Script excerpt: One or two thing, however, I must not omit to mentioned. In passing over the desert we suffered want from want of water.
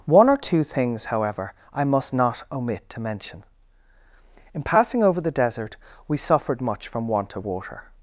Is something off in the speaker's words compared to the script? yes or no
yes